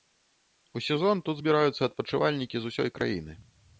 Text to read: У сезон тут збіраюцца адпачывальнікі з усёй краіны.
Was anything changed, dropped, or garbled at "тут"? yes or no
no